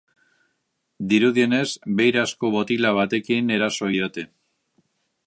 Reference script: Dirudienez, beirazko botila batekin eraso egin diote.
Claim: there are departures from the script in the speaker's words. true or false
true